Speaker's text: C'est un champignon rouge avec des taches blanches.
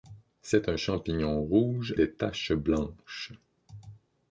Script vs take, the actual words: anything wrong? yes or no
yes